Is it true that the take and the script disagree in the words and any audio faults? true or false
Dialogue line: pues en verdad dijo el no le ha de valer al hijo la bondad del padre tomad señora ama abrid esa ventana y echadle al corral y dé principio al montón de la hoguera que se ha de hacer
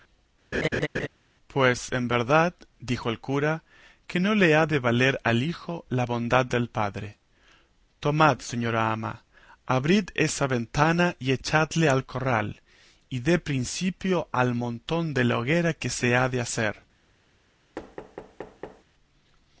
true